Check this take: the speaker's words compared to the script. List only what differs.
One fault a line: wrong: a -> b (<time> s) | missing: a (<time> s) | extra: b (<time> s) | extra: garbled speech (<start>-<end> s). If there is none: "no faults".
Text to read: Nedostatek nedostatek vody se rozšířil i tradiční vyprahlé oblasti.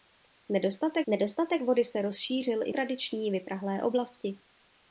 no faults